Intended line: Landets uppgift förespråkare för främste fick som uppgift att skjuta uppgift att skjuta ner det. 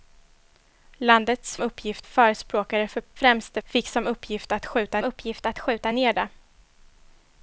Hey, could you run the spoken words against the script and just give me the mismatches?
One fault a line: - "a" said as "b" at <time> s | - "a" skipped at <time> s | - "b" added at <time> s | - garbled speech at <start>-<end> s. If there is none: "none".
none